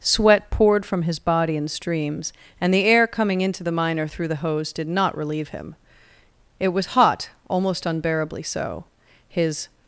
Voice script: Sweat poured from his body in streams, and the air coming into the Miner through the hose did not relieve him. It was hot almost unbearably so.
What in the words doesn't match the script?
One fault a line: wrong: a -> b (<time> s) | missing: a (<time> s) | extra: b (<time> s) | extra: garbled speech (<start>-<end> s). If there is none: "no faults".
extra: His (9.3 s)